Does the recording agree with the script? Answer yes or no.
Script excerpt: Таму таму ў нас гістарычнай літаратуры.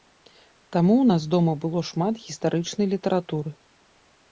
no